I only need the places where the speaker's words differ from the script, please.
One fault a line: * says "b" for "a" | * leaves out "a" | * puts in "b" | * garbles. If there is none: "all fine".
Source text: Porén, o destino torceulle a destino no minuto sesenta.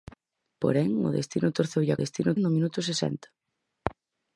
all fine